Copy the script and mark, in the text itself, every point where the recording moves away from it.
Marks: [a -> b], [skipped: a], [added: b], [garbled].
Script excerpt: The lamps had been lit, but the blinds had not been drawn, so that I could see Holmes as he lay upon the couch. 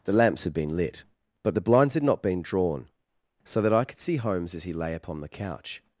The lamps had been lit, but the blinds had not been drawn, so that I could see Holmes as he lay upon the couch.